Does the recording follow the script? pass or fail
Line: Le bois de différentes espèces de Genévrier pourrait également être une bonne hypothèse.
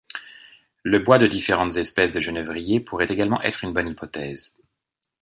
pass